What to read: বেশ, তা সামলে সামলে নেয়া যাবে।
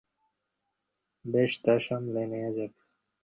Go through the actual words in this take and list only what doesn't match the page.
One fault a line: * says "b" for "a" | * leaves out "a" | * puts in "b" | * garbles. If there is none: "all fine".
* leaves out "সামলে"